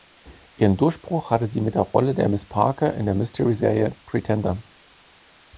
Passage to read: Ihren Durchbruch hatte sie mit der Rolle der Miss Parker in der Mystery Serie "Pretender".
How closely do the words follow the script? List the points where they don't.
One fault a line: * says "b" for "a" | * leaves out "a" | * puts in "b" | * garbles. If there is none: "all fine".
all fine